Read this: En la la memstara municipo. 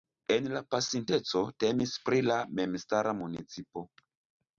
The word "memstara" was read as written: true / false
true